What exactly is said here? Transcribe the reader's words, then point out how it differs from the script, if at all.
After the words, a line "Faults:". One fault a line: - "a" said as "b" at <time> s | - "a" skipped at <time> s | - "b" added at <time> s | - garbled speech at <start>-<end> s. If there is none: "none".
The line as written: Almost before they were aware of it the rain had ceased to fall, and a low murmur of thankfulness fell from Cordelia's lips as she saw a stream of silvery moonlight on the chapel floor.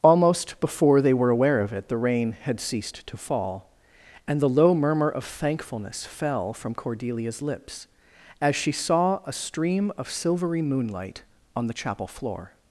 Almost before they were aware of it the rain had ceased to fall, and the low murmur of thankfulness fell from Cordelia's lips as she saw a stream of silvery moonlight on the chapel floor.
Faults:
- "a" said as "the" at 4.4 s